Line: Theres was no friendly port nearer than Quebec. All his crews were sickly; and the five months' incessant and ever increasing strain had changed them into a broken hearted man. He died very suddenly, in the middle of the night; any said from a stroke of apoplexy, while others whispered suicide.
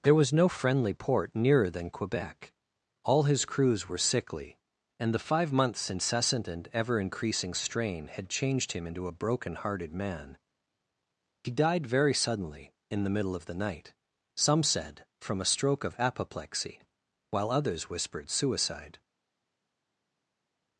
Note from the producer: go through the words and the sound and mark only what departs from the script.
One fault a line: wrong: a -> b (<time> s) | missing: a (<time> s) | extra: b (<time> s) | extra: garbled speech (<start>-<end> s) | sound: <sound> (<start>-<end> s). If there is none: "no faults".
wrong: Theres -> There (0.0 s)
wrong: them -> him (8.7 s)
wrong: any -> some (14.3 s)